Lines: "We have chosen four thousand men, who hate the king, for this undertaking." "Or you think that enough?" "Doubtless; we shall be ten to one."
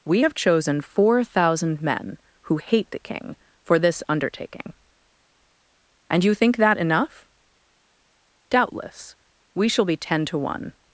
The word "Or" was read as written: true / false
false